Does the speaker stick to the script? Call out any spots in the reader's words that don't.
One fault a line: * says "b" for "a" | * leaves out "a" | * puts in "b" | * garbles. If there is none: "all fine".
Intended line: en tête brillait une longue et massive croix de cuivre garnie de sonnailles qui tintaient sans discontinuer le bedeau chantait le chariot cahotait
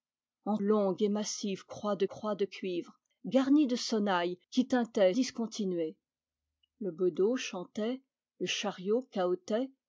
* leaves out "tête brillait une"
* puts in "croix de"
* leaves out "sans"